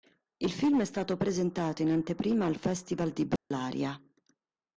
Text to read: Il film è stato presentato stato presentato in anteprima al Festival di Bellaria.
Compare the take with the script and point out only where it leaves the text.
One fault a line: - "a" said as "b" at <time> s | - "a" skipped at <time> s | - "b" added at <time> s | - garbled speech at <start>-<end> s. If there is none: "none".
- "stato presentato" skipped at 1.8 s